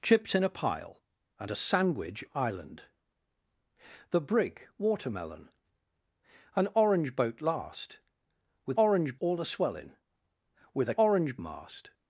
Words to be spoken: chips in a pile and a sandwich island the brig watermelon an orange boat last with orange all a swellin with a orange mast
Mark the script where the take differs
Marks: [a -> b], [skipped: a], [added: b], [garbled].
chips in a pile and a sandwich island the brig watermelon an orange boat last with orange all a swellin with a orange mast